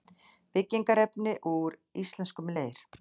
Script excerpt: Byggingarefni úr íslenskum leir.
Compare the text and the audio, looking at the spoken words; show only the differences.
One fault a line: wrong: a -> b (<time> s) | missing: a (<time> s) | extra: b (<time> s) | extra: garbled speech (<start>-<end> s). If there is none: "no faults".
no faults